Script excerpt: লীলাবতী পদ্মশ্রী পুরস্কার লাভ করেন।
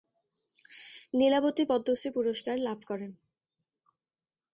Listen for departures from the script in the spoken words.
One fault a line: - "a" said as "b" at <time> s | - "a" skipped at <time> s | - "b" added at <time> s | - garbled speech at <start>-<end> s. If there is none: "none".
none